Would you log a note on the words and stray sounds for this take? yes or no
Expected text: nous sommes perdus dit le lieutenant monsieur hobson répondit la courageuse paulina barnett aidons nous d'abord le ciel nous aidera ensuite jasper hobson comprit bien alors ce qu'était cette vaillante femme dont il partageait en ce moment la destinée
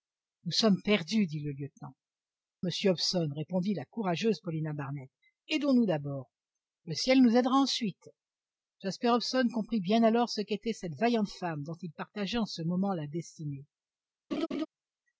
yes